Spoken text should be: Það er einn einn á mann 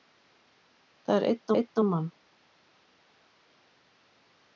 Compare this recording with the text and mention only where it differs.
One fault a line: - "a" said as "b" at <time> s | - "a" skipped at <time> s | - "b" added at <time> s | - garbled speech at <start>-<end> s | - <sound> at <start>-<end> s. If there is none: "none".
none